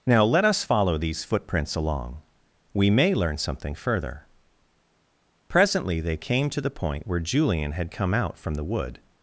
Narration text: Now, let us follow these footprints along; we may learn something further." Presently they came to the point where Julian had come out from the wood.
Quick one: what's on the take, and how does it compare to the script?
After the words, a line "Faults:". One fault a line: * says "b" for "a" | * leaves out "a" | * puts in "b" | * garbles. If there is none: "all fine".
Now, let us follow these footprints along; we may learn something further." Presently they came to the point where Julian had come out from the wood.
Faults:
all fine